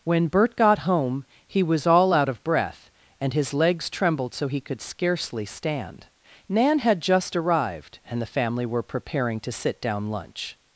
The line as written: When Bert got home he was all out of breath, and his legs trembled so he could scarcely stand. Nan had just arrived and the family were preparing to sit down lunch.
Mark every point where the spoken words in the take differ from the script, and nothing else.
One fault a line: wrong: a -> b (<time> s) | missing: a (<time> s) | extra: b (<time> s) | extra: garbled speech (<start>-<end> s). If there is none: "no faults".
no faults